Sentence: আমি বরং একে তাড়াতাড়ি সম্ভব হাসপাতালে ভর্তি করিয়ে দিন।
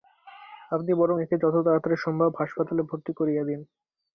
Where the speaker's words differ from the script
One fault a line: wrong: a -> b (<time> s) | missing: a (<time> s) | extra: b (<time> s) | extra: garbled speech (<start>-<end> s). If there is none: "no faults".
wrong: আমি -> আপনি (0.7 s)
extra: যত (1.4 s)